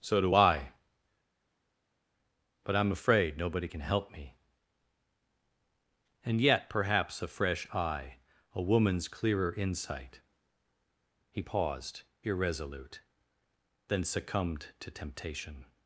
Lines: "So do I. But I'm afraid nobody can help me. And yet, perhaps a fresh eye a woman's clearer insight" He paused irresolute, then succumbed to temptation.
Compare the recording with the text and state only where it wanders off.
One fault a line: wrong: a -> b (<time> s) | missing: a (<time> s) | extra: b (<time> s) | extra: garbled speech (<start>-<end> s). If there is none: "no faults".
no faults